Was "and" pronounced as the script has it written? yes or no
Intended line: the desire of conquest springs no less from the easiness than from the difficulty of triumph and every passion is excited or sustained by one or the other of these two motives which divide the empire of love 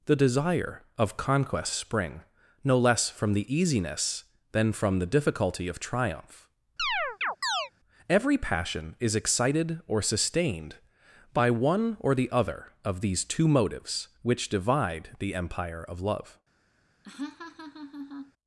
no